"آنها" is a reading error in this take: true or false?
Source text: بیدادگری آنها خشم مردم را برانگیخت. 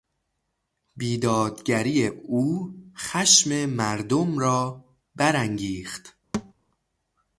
true